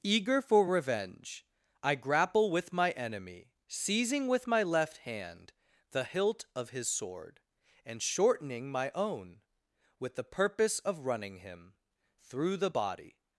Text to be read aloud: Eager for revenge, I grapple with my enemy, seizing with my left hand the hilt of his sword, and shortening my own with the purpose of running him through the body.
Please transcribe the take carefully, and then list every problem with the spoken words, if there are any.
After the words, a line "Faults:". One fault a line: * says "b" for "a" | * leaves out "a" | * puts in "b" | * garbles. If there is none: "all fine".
Eager for revenge, I grapple with my enemy, seizing with my left hand the hilt of his sword, and shortening my own with the purpose of running him through the body.
Faults:
all fine